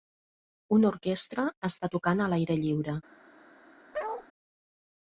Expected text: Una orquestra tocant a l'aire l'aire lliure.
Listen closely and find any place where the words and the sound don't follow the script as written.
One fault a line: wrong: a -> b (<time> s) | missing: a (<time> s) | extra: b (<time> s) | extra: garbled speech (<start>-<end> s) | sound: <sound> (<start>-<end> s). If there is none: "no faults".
extra: està (1.7 s)
missing: l'aire (2.6 s)
sound: bark (3.9-4.3 s)